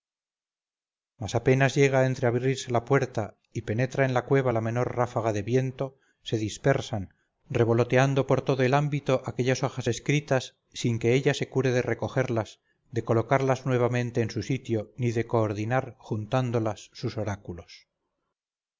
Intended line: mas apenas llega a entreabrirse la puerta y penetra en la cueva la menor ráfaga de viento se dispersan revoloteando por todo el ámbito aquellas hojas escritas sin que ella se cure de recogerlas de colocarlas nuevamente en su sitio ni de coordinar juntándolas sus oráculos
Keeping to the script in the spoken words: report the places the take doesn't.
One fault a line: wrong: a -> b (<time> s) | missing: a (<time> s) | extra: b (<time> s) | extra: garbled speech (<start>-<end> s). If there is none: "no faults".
no faults